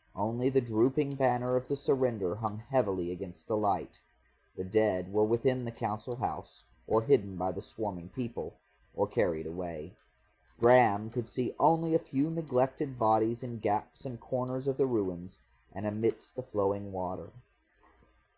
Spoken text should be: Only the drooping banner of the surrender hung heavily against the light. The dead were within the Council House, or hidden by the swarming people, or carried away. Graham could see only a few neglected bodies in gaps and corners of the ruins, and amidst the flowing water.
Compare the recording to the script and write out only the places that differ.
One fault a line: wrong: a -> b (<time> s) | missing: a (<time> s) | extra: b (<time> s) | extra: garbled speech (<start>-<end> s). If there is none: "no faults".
no faults